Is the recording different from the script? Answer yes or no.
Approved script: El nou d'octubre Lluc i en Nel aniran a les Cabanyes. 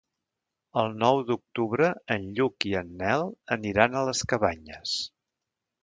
yes